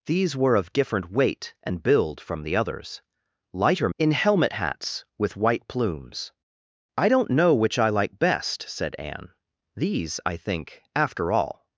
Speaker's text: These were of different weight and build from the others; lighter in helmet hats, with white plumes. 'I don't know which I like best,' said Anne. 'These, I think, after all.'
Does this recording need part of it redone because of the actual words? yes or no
no